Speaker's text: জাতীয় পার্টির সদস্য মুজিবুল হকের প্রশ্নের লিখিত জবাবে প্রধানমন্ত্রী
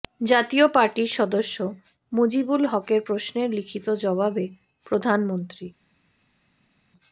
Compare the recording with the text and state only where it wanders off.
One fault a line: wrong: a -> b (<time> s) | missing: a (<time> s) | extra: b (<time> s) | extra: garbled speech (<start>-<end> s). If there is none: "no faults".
no faults